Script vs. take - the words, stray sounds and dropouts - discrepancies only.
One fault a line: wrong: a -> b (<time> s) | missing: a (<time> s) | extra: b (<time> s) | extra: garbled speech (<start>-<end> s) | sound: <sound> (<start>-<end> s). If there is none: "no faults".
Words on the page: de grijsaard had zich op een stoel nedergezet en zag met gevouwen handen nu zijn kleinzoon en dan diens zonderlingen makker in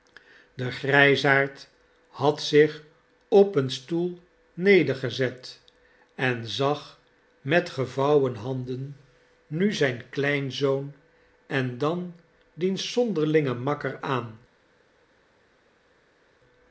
wrong: in -> aan (14.0 s)